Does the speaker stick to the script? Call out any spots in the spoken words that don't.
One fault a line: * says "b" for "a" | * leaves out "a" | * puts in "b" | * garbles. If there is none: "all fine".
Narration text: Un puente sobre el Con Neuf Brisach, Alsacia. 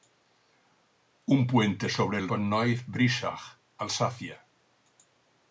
all fine